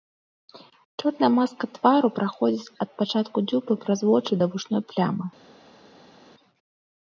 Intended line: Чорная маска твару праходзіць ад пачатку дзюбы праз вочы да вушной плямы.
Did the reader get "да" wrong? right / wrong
right